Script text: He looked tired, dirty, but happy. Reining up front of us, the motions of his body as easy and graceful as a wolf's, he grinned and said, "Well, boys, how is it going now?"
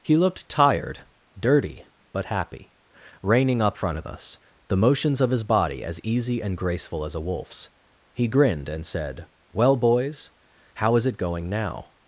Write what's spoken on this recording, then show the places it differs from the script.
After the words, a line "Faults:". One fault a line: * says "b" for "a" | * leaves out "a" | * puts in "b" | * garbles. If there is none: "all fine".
He looked tired, dirty, but happy. Reining up front of us, the motions of his body as easy and graceful as a wolf's, he grinned and said, "Well, boys, how is it going now?"
Faults:
all fine